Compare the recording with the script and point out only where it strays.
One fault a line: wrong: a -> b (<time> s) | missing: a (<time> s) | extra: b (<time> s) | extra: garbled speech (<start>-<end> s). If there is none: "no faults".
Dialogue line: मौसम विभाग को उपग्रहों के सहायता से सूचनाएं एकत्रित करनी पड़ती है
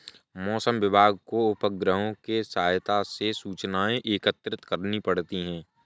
no faults